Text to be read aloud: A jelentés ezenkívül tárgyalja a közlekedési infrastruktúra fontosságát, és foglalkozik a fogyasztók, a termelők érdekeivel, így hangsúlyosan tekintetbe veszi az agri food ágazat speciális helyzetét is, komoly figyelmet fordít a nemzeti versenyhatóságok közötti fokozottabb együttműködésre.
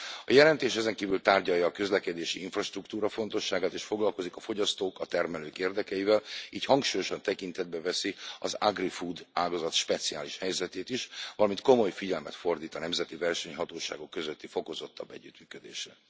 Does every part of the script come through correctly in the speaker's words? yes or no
no